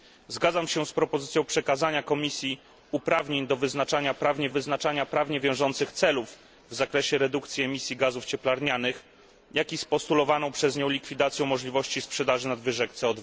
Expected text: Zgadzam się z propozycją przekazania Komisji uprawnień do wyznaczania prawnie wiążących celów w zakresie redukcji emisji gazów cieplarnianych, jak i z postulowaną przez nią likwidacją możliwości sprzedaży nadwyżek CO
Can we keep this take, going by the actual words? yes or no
no